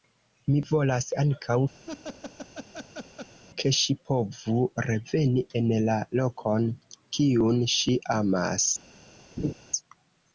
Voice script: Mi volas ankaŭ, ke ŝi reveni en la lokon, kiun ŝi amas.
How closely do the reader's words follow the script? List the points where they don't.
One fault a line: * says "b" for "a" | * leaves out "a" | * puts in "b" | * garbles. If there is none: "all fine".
* puts in "povu"